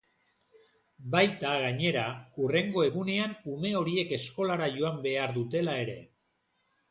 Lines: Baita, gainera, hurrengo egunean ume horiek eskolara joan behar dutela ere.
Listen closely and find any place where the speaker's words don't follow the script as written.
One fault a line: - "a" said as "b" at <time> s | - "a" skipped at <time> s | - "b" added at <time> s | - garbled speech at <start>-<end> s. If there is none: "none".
none